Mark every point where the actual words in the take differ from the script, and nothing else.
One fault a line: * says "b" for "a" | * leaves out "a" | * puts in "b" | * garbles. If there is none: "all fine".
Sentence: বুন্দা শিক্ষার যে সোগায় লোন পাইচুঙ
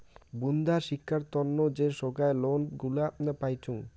* puts in "তন্ন"
* puts in "গুলা"